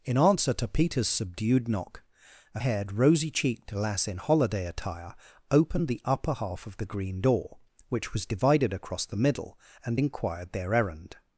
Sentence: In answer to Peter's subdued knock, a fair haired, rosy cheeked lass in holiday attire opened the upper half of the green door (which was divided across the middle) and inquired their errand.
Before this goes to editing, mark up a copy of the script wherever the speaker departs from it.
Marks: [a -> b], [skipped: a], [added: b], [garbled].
In answer to Peter's subdued knock, a [skipped: fair] haired, rosy cheeked lass in holiday attire opened the upper half of the green door (which was divided across the middle) and inquired their errand.